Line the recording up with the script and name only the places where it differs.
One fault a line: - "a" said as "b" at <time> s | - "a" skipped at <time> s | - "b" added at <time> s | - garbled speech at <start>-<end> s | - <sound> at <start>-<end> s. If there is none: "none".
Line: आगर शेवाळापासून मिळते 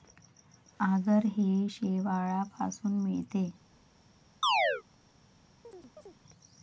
- "हे" added at 1.3 s
- chirp at 4.4-4.8 s
- chirp at 5.6-6.2 s